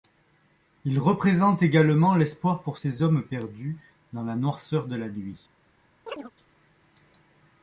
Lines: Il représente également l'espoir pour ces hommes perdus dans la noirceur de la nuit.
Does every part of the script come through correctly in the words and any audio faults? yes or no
no